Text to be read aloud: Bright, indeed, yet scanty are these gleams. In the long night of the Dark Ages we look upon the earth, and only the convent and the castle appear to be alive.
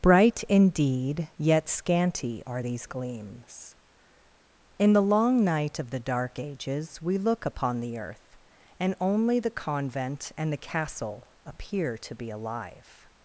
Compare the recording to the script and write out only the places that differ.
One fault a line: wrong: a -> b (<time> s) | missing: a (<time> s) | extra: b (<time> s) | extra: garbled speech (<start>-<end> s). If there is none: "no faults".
no faults